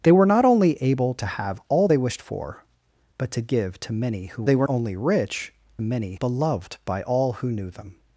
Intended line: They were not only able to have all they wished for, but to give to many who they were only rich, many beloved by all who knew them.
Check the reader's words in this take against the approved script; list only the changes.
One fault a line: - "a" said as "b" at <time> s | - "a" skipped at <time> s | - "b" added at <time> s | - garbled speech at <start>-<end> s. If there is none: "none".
none